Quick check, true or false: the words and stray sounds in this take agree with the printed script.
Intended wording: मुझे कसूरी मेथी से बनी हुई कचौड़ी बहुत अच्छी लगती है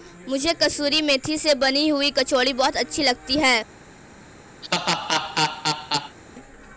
false